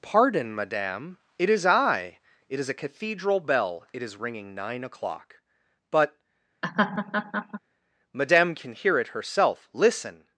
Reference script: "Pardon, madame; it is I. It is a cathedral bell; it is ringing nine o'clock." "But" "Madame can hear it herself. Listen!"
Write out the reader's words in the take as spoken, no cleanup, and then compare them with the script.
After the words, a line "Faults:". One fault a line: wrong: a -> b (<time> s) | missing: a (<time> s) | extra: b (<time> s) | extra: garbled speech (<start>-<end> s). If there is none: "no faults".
"Pardon, madame; it is I. It is a cathedral bell; it is ringing nine o'clock." "But" "Madame can hear it herself. Listen!"
Faults:
no faults